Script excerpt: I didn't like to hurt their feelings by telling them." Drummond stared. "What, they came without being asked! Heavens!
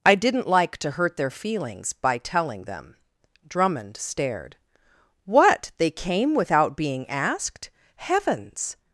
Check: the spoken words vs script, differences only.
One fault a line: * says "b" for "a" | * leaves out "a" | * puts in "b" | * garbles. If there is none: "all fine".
all fine